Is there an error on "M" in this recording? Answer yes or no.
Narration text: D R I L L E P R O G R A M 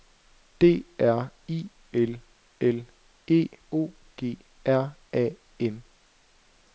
no